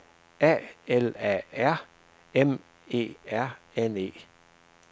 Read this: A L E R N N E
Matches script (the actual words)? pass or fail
fail